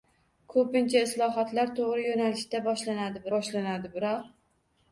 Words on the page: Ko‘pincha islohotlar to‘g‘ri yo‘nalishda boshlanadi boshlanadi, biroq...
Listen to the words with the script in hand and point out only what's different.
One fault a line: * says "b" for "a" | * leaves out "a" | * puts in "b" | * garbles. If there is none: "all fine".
all fine